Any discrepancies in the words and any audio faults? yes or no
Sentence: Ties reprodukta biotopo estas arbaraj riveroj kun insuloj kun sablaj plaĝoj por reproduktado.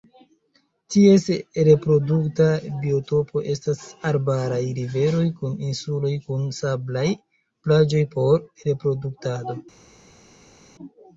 no